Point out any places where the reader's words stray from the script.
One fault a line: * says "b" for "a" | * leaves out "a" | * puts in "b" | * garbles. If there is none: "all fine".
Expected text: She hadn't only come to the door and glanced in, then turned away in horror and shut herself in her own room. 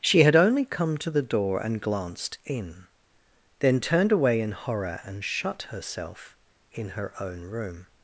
* says "had" for "hadn't"